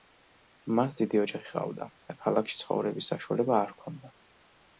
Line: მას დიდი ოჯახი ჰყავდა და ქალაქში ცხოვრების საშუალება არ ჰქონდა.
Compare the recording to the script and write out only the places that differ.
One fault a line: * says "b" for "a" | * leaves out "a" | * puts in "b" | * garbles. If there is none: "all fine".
all fine